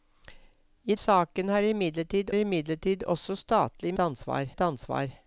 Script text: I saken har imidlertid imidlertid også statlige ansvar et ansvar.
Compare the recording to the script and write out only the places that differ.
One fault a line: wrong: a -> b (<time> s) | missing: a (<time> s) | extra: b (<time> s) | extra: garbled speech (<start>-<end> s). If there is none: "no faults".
no faults